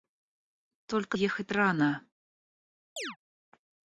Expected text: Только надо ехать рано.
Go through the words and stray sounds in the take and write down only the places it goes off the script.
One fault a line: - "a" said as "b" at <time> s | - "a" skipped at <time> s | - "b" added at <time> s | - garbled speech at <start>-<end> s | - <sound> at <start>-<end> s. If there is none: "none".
- "надо" skipped at 1.2 s
- chirp at 3.0-3.2 s